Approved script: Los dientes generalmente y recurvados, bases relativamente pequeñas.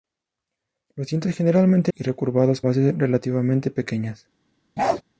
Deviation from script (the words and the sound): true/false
true